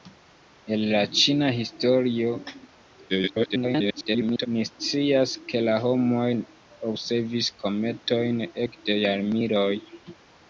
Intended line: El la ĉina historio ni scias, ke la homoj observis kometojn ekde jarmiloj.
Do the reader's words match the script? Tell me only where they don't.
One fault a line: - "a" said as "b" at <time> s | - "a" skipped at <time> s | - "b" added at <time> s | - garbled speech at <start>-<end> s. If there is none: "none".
- garbled speech at 3.1-4.5 s